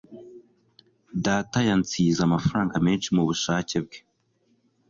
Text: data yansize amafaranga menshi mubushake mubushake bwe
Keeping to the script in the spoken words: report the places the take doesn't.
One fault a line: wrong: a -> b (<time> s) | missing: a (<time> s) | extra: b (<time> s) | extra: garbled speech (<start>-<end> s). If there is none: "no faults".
missing: mubushake (3.8 s)